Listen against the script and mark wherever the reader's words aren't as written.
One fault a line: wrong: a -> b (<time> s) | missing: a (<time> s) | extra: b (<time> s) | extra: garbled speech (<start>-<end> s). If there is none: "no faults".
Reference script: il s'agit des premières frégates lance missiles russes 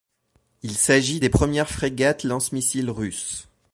no faults